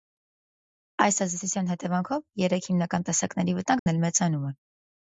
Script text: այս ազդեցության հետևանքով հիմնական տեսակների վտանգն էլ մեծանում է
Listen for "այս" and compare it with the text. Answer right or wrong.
right